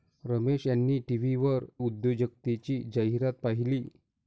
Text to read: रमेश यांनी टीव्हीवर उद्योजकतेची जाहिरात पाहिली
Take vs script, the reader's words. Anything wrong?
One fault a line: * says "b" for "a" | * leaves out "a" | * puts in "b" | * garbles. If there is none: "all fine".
all fine